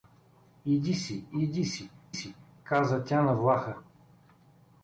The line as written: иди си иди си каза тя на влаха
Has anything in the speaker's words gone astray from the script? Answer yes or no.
yes